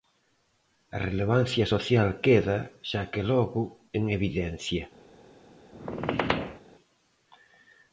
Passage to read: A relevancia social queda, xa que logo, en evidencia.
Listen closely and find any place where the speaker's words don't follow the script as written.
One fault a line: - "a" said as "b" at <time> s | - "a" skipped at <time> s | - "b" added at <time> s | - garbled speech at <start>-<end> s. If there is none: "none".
none